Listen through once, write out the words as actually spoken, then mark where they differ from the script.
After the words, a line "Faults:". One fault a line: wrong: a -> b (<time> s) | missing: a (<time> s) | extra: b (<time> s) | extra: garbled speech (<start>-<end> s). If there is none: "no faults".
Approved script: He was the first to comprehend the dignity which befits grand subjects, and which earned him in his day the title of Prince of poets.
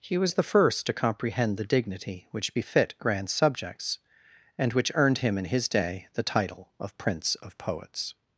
He was the first to comprehend the dignity which befit grand subjects, and which earned him in his day the title of Prince of poets.
Faults:
wrong: befits -> befit (2.5 s)